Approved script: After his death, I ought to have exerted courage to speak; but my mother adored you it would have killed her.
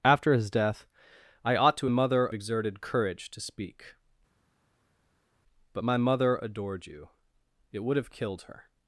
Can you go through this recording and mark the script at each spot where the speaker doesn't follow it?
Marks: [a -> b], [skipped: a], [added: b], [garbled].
After his death, I ought to [have -> mother] exerted courage to speak; but my mother adored you it would have killed her.